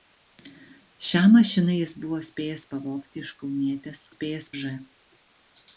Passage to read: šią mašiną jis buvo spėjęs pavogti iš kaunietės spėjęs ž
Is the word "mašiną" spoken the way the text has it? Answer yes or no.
yes